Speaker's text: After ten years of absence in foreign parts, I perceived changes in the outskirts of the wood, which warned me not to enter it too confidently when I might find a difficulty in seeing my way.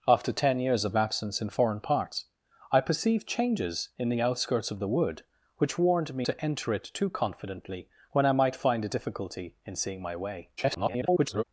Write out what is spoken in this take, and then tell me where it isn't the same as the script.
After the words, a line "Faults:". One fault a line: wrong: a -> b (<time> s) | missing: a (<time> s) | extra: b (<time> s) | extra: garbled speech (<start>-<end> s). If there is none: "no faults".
After ten years of absence in foreign parts, I perceived changes in the outskirts of the wood, which warned me to enter it too confidently when I might find a difficulty in seeing my way. [garbled]
Faults:
missing: not (6.3 s)
extra: garbled speech (10.6-11.4 s)